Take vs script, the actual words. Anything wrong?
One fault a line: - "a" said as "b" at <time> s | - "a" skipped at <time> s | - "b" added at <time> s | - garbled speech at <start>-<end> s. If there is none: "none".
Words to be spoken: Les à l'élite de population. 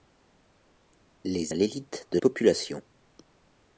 none